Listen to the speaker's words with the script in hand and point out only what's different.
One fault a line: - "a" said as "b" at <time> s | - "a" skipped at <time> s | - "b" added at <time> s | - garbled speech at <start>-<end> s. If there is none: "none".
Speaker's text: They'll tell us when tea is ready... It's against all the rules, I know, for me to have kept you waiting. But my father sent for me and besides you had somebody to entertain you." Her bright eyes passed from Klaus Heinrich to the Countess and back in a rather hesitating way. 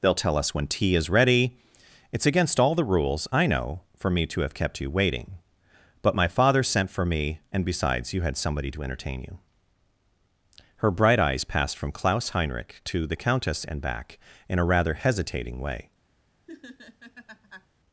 none